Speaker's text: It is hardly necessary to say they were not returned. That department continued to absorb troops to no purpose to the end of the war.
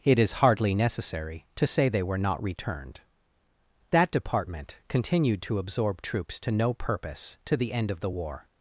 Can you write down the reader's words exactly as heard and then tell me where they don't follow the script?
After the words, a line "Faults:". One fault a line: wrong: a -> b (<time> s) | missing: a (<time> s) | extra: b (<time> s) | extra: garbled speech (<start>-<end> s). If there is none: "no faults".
It is hardly necessary to say they were not returned. That department continued to absorb troops to no purpose to the end of the war.
Faults:
no faults